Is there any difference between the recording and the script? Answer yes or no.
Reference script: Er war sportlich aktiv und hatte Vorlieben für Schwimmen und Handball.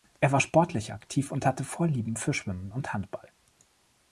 no